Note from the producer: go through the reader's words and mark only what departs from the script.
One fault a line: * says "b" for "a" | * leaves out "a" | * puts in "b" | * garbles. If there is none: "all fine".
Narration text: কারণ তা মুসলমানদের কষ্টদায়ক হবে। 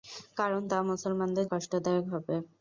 all fine